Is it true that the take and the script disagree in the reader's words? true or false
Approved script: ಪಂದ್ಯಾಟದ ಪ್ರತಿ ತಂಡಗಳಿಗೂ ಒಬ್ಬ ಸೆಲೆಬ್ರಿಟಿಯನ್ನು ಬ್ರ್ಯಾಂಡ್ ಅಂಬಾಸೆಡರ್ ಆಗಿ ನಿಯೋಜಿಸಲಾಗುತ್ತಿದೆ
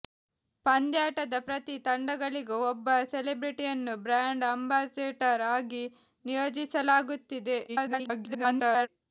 true